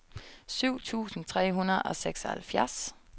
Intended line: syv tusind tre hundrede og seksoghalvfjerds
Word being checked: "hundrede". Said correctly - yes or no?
yes